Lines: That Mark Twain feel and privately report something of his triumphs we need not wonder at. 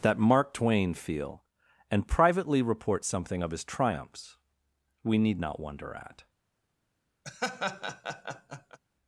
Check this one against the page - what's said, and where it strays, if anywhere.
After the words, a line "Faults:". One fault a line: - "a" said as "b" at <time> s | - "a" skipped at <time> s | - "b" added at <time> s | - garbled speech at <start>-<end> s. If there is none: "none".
That Mark Twain feel and privately report something of his triumphs we need not wonder at.
Faults:
none